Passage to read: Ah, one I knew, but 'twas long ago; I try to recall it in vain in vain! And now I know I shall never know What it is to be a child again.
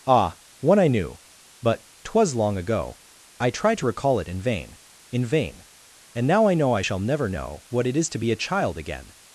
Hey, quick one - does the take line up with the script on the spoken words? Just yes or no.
yes